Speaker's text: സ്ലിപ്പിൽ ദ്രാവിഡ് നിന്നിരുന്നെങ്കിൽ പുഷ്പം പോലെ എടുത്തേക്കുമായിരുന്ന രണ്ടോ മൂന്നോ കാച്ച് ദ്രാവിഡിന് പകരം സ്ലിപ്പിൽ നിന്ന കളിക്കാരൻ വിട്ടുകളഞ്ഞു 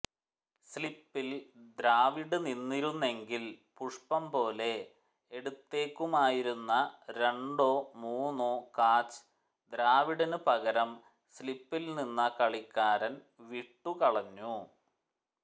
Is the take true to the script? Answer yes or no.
yes